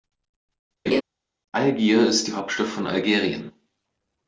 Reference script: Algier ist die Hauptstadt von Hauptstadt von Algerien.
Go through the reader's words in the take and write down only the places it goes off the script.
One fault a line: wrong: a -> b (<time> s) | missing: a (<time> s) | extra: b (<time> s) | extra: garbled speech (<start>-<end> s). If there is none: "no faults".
missing: Hauptstadt von (2.9 s)